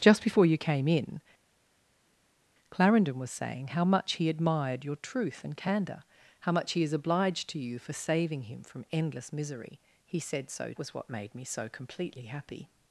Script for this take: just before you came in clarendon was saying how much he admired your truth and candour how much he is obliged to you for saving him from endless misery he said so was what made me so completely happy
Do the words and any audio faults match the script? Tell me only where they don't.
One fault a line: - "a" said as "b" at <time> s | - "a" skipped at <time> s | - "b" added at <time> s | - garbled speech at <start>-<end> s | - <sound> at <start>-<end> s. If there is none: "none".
none